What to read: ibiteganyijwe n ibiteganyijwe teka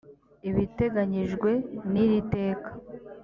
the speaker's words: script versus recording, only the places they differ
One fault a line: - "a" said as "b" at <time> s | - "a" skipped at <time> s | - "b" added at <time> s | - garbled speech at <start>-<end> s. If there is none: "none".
- "ibiteganyijwe" said as "iri" at 2.0 s